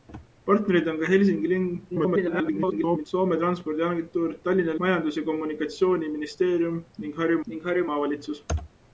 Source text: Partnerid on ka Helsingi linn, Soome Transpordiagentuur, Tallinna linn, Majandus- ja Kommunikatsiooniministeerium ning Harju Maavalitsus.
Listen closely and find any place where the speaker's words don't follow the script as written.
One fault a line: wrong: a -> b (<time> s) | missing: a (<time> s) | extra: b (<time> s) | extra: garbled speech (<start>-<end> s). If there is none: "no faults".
extra: garbled speech (1.9-3.1 s)
missing: linn (4.7 s)
extra: ning Harju (7.5 s)